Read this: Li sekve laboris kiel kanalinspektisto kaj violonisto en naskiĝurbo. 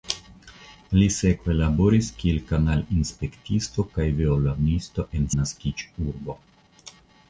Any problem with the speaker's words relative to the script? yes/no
no